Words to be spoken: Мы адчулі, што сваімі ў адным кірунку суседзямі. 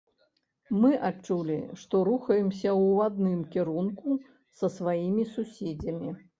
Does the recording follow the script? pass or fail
fail